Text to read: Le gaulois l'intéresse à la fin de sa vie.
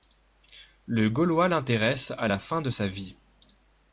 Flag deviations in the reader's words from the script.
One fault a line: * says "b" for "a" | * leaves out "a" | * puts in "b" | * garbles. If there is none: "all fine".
all fine